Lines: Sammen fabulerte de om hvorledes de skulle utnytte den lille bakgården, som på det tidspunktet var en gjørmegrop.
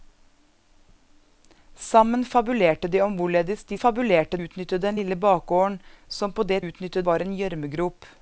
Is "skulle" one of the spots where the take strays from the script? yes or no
yes